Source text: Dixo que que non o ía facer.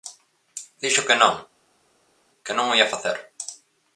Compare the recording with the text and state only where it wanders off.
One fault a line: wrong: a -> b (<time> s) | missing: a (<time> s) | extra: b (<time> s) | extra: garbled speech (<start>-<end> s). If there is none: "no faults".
extra: non (1.2 s)